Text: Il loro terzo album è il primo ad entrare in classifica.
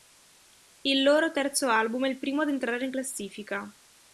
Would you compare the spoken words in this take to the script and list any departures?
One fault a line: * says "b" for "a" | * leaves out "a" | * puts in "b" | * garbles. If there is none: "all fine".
all fine